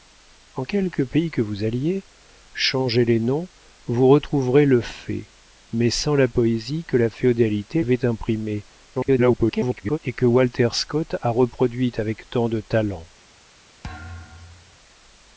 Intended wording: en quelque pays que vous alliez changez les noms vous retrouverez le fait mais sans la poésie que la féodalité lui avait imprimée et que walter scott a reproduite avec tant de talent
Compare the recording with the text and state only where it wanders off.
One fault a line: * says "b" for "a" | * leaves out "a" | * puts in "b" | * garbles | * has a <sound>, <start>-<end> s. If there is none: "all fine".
* leaves out "lui"
* garbles
* has a thud, 13.8-14.8 s